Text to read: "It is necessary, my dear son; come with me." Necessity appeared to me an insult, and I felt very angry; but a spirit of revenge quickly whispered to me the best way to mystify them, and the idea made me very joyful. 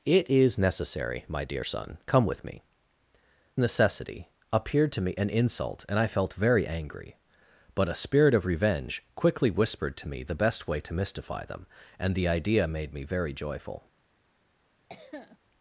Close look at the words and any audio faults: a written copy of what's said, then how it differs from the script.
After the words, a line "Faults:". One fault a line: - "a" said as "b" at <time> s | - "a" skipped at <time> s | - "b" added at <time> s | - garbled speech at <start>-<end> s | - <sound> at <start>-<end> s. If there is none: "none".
"It is necessary, my dear son; come with me." Necessity appeared to me an insult, and I felt very angry; but a spirit of revenge quickly whispered to me the best way to mystify them, and the idea made me very joyful.
Faults:
- cough at 14.9-15.4 s